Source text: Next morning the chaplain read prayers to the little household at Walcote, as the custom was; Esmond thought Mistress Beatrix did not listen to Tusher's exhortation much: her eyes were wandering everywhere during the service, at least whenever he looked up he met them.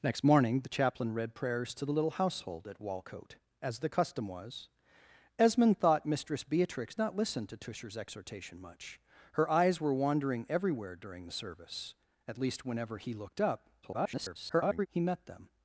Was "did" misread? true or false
true